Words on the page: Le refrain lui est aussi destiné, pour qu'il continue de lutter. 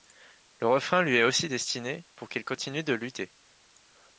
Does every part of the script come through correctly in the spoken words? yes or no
yes